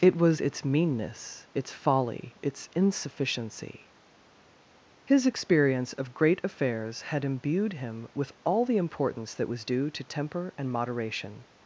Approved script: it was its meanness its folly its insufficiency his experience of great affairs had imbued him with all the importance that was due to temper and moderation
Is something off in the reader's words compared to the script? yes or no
no